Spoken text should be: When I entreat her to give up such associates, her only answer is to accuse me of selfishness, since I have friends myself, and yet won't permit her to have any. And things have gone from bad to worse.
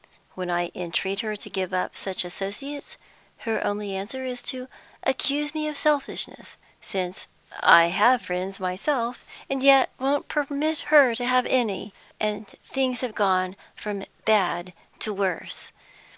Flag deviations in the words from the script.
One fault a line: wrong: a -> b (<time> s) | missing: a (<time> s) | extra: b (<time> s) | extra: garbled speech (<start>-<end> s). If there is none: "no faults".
no faults